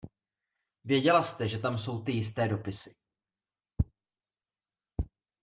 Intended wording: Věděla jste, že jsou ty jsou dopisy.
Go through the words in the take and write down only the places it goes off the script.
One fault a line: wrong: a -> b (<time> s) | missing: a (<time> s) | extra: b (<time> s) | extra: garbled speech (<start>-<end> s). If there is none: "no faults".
extra: tam (1.6 s)
wrong: jsou -> jisté (2.1 s)